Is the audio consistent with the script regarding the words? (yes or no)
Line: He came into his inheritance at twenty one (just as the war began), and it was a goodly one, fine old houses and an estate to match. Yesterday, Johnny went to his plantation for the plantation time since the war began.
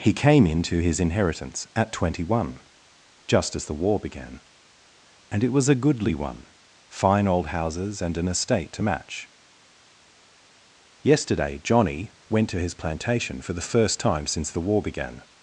no